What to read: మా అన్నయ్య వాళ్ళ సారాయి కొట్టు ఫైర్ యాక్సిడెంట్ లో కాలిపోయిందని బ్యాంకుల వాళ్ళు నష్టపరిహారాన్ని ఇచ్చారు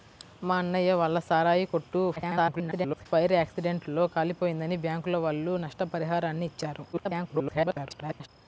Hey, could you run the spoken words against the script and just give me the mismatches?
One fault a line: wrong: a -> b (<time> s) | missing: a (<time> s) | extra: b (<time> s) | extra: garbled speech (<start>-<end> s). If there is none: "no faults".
extra: garbled speech (2.2-3.1 s)
extra: garbled speech (6.9-8.3 s)